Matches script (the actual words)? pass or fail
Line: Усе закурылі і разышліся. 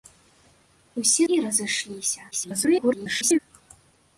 fail